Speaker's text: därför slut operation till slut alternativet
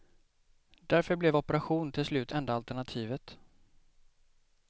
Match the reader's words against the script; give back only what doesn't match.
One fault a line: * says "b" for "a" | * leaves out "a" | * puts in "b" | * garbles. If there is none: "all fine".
* says "blev" for "slut"
* puts in "enda"